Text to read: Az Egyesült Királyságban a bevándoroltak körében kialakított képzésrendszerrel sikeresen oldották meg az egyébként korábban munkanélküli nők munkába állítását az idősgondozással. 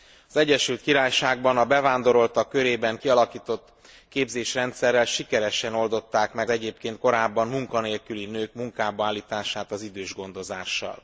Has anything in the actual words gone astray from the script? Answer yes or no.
yes